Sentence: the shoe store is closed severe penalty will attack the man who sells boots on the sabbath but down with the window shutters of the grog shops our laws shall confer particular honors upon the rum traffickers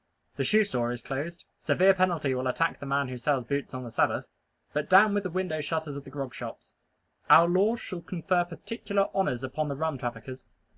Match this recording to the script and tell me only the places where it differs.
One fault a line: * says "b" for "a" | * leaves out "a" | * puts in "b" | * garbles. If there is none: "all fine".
all fine